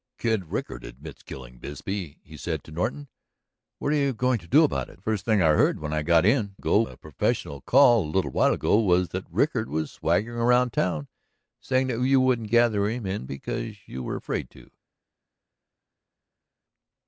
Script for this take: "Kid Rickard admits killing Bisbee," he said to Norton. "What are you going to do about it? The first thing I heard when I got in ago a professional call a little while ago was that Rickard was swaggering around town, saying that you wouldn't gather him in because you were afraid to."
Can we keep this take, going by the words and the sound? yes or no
yes